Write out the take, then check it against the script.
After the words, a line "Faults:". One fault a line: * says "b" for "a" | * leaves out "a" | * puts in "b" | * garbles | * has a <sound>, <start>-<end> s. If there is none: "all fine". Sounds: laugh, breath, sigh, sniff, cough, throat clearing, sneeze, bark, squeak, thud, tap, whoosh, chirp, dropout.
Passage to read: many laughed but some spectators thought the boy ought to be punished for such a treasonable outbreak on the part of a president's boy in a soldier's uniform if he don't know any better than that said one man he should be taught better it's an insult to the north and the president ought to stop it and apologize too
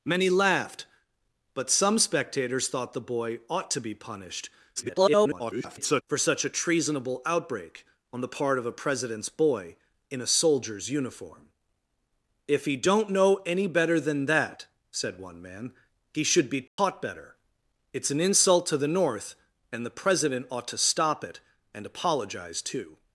many laughed but some spectators thought the boy ought to be punished [garbled] for such a treasonable outbreak on the part of a president's boy in a soldier's uniform if he don't know any better than that said one man he should be taught better it's an insult to the north and the president ought to stop it and apologize too
Faults:
* garbles
* has a dropout, 16.7-16.8 s